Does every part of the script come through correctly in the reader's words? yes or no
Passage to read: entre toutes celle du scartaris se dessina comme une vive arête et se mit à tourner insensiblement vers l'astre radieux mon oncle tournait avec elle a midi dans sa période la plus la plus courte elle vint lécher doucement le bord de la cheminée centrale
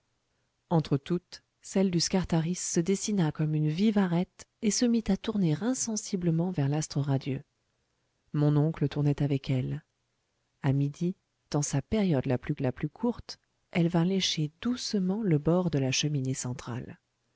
yes